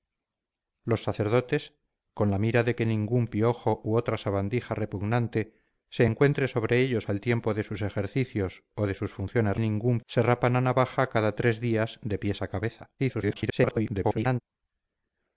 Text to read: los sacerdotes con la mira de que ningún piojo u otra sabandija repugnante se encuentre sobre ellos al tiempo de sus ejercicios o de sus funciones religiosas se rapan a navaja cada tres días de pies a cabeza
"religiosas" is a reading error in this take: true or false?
true